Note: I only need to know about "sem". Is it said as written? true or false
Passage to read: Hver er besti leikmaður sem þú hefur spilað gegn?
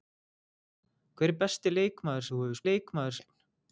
false